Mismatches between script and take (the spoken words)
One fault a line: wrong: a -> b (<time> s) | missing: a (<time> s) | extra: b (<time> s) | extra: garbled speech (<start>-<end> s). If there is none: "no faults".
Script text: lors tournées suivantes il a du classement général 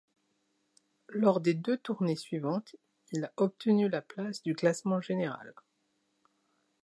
extra: des deux (1.4 s)
extra: obtenu la place (3.4 s)